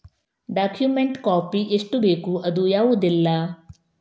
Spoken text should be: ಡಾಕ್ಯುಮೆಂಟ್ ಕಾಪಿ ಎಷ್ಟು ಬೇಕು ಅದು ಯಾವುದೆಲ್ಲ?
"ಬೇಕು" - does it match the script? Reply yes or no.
yes